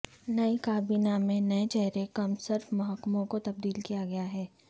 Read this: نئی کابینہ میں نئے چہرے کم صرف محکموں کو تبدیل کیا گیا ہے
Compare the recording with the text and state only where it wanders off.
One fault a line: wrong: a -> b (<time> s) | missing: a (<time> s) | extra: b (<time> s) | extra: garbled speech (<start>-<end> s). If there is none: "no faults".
no faults